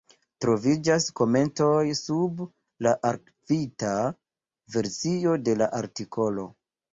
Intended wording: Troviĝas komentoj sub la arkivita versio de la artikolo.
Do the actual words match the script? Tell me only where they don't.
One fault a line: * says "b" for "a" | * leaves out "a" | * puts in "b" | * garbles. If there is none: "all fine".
all fine